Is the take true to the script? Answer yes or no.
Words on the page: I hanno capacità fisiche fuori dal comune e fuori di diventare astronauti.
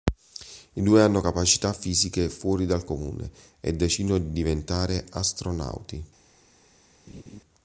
no